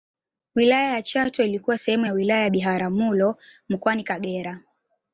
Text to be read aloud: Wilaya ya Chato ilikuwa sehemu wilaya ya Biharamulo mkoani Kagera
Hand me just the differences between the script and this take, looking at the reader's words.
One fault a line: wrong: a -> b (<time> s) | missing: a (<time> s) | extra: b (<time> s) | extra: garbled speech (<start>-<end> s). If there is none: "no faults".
extra: ya (2.0 s)